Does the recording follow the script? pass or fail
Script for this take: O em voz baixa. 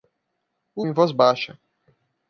pass